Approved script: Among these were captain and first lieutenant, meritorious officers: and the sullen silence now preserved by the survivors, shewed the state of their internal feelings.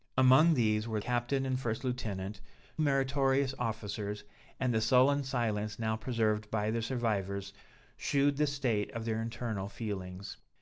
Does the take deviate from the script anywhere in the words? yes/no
no